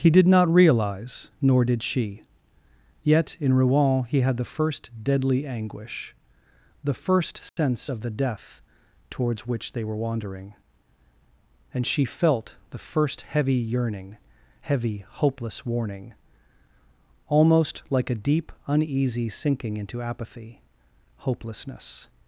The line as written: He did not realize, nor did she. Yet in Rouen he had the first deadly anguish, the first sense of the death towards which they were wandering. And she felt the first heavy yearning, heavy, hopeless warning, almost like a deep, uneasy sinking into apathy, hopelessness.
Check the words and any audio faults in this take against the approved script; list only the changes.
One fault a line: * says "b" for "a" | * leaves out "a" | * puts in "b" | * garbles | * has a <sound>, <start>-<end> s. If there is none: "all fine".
* has a dropout, 7.5-7.6 s